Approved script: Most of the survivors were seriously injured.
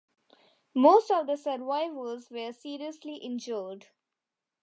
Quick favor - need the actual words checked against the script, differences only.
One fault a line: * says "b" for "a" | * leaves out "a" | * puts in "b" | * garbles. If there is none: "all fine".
all fine